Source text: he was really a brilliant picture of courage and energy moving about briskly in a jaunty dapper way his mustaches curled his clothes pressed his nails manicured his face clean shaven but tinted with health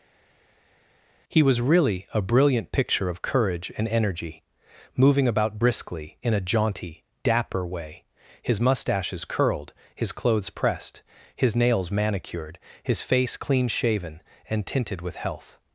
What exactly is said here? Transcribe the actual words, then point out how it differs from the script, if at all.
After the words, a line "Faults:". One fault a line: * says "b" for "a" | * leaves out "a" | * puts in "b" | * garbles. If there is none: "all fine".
he was really a brilliant picture of courage and energy moving about briskly in a jaunty dapper way his mustaches curled his clothes pressed his nails manicured his face clean shaven and tinted with health
Faults:
* says "and" for "but"